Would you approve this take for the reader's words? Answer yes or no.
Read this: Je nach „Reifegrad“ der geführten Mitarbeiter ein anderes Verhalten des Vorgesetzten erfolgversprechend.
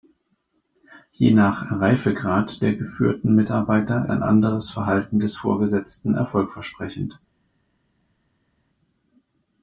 yes